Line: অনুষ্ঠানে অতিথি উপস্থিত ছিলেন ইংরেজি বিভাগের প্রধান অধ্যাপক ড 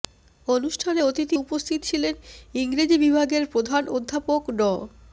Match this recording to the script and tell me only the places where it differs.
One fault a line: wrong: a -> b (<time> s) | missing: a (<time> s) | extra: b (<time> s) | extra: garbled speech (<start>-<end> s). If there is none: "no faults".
no faults